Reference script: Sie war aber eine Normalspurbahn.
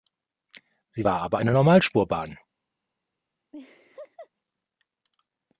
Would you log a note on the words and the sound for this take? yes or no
yes